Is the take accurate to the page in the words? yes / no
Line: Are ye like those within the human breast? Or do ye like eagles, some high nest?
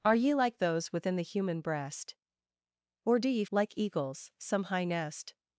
yes